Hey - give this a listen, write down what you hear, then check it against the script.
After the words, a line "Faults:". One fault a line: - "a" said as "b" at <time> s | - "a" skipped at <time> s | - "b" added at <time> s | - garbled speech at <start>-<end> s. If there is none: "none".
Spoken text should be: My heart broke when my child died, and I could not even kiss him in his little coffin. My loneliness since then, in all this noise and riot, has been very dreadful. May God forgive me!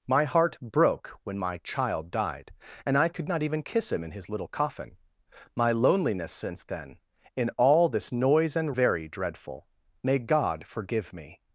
My heart broke when my child died, and I could not even kiss him in his little coffin. My loneliness since then, in all this noise and very dreadful. May God forgive me!
Faults:
- "riot has been" skipped at 8.7 s